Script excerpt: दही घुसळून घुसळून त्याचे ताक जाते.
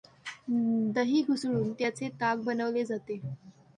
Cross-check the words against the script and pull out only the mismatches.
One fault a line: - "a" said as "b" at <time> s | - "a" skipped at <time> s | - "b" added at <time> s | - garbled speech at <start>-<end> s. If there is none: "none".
- "घुसळून" skipped at 1.7 s
- "बनवले" added at 2.4 s